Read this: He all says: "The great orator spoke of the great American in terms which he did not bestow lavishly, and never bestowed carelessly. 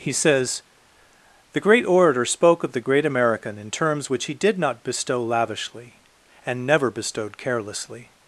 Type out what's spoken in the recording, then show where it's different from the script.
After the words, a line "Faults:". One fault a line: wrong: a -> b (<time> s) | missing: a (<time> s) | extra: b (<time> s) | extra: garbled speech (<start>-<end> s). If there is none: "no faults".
He says: "The great orator spoke of the great American in terms which he did not bestow lavishly, and never bestowed carelessly.
Faults:
missing: all (0.1 s)